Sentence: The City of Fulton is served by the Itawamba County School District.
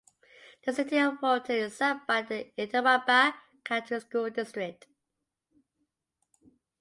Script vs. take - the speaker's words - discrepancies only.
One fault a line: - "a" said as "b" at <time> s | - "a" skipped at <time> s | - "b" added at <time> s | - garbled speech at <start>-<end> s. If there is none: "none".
none